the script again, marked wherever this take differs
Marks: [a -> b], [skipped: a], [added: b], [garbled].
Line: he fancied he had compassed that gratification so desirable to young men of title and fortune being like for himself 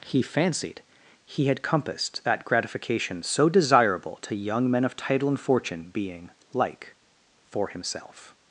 he fancied he had compassed that gratification so desirable to young men of title and fortune being like for himself